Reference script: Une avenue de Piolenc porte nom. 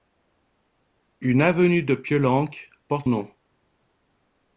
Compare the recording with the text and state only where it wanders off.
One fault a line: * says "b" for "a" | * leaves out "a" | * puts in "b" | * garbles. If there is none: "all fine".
all fine